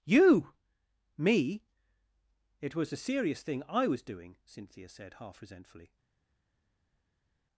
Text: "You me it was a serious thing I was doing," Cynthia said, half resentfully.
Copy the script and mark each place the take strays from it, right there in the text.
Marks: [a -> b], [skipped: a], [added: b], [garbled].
"You me it was a serious thing I was doing," Cynthia said, half resentfully.